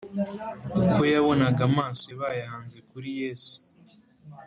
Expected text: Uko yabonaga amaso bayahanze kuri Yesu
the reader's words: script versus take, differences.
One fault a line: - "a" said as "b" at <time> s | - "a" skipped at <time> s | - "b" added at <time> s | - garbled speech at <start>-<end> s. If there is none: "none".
none